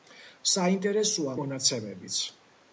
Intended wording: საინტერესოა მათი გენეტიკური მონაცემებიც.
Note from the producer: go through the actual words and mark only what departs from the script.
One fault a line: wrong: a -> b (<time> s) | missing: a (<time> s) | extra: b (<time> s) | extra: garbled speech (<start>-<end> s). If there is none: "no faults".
missing: მათი გენეტიკური (1.4 s)